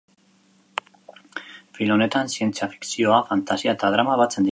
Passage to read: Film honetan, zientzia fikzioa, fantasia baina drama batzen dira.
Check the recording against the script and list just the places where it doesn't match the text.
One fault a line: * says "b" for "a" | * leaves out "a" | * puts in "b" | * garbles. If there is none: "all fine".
* says "eta" for "baina"